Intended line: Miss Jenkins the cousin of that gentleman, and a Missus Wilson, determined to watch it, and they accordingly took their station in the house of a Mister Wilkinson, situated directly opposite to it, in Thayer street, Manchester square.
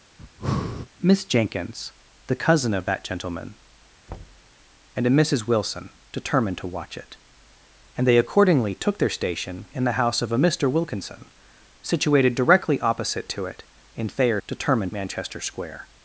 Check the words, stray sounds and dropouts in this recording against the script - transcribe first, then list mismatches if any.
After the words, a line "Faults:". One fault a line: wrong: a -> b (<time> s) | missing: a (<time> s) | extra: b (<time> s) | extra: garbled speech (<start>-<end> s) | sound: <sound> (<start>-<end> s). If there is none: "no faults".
Miss Jenkins the cousin of that gentleman, and a Missus Wilson, determined to watch it, and they accordingly took their station in the house of a Mister Wilkinson, situated directly opposite to it, in Thayer determined, Manchester square.
Faults:
sound: breath (0.2-0.9 s)
sound: thud (4.1-4.5 s)
wrong: street -> determined (14.5 s)